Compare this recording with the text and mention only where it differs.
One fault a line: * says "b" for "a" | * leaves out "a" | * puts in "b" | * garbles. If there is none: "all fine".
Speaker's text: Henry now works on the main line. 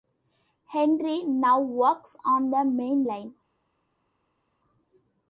all fine